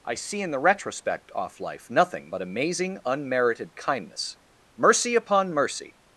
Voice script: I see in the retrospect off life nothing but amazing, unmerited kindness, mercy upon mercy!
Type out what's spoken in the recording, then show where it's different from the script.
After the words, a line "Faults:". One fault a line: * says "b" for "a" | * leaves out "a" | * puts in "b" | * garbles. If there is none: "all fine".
I see in the retrospect off life nothing but amazing, unmerited kindness, mercy upon mercy!
Faults:
all fine